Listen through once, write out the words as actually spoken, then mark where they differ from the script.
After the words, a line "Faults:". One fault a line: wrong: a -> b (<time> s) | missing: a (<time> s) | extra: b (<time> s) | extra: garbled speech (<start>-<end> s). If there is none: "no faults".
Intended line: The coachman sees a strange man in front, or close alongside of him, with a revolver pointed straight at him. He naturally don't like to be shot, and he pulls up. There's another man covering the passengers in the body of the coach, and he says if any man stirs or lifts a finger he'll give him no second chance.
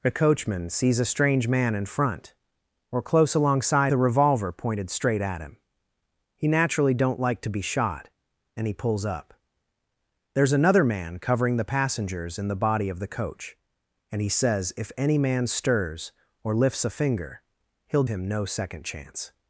The coachman sees a strange man in front, or close alongside a revolver pointed straight at him. He naturally don't like to be shot, and he pulls up. There's another man covering the passengers in the body of the coach, and he says if any man stirs or lifts a finger he'll him no second chance.
Faults:
missing: of him with (3.9 s)
missing: give (18.0 s)